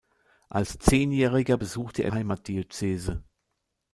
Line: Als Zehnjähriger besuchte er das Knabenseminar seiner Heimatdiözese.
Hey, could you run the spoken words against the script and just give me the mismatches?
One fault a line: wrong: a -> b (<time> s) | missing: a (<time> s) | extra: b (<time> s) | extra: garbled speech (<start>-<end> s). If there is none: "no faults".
missing: das Knabenseminar seiner (2.1 s)